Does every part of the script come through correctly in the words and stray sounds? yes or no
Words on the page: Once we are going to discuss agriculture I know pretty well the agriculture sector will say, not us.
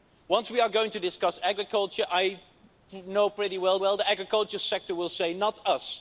no